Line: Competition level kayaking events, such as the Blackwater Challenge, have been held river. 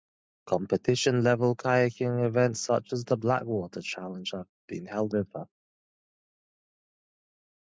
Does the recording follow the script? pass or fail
pass